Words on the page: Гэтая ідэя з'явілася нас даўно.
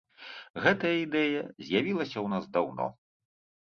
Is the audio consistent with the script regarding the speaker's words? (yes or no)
no